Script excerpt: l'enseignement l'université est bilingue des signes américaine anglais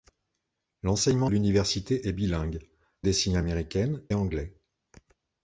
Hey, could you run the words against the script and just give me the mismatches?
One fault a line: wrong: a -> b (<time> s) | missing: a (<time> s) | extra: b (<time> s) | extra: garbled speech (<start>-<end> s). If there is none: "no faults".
no faults